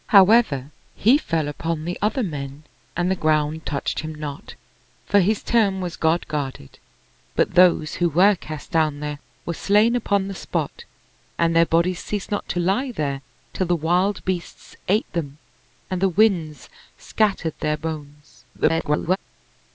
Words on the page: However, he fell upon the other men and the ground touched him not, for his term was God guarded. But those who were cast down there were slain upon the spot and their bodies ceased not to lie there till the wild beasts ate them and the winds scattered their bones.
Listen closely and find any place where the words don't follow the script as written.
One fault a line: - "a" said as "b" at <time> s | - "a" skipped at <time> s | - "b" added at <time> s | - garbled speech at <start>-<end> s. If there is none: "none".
- garbled speech at 18.5-19.2 s